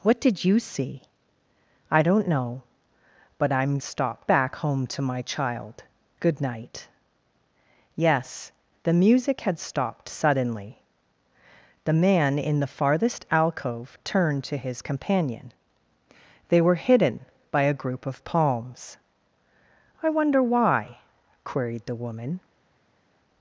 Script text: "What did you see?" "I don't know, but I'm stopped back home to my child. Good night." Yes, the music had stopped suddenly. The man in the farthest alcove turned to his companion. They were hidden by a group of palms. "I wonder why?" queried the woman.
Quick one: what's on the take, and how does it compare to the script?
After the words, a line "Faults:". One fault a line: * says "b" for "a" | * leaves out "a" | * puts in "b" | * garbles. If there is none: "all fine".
"What did you see?" "I don't know, but I'm stopped back home to my child. Good night." Yes, the music had stopped suddenly. The man in the farthest alcove turned to his companion. They were hidden by a group of palms. "I wonder why?" queried the woman.
Faults:
all fine